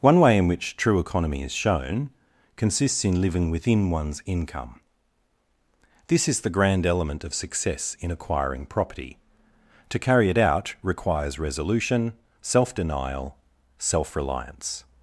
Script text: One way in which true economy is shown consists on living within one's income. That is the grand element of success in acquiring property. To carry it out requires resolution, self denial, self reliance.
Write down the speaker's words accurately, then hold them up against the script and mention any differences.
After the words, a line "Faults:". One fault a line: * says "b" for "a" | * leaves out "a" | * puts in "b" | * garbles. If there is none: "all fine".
One way in which true economy is shown consists in living within one's income. This is the grand element of success in acquiring property. To carry it out requires resolution, self denial, self reliance.
Faults:
* says "in" for "on"
* says "This" for "That"